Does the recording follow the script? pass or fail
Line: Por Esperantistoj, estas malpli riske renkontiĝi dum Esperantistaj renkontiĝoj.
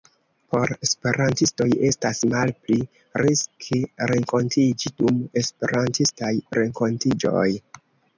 pass